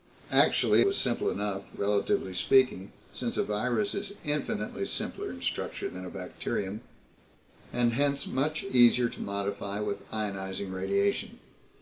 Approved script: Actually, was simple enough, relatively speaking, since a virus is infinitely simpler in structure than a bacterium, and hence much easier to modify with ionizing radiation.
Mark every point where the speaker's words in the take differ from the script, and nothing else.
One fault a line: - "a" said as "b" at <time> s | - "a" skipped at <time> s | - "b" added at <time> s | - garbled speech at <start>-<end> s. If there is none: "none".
none